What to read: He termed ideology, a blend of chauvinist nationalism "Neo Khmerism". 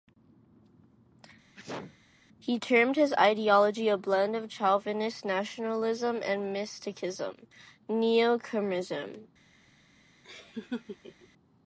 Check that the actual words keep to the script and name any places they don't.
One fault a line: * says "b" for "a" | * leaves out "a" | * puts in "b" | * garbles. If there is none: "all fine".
* puts in "his"
* puts in "and mysticism"